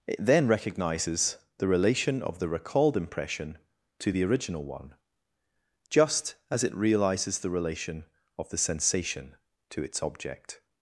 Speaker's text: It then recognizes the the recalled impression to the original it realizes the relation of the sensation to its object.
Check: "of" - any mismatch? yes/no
no